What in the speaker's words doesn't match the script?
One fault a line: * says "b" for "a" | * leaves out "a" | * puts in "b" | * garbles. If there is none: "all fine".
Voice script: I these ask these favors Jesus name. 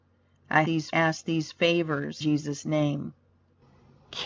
all fine